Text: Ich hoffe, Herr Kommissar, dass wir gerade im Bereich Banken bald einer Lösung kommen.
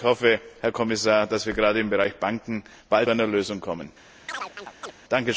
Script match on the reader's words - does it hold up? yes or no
yes